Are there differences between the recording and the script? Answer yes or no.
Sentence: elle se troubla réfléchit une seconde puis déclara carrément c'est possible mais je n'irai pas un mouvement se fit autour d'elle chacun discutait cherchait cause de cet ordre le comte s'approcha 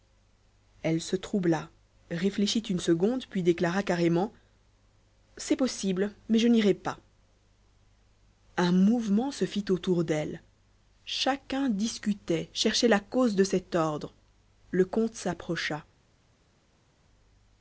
yes